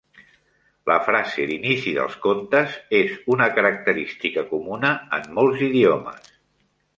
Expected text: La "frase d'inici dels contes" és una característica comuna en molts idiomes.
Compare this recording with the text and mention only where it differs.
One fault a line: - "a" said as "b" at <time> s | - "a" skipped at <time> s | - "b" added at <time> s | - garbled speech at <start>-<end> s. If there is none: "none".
none